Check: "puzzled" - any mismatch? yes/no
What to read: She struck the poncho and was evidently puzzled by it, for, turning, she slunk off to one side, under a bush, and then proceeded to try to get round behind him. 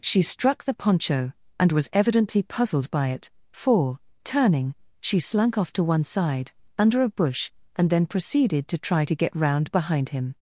no